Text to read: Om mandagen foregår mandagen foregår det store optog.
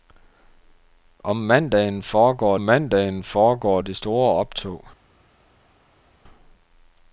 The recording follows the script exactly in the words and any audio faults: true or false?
true